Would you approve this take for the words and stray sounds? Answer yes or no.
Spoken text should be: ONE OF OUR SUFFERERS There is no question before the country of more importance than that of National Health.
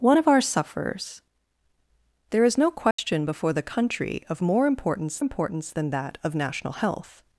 no